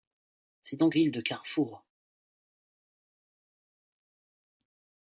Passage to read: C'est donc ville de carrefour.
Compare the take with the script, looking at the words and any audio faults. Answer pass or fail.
pass